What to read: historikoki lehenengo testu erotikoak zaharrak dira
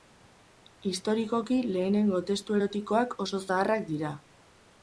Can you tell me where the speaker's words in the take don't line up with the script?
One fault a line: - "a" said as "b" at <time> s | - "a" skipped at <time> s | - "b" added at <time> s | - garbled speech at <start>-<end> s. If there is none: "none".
- "oso" added at 3.2 s